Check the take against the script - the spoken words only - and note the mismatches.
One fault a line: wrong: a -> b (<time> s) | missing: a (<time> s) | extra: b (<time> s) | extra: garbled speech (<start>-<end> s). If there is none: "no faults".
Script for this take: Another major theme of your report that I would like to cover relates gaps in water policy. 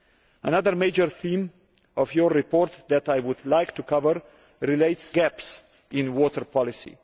no faults